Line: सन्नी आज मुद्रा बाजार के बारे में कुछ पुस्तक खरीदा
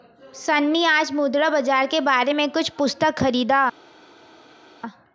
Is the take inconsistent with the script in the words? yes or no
no